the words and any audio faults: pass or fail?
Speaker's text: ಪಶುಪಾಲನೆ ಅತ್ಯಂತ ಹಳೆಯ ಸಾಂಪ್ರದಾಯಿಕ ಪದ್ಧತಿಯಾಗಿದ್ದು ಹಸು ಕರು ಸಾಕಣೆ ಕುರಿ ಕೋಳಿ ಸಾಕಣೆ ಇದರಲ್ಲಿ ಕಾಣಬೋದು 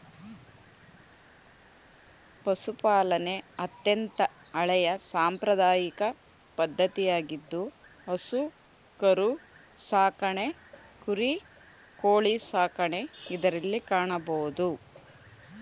pass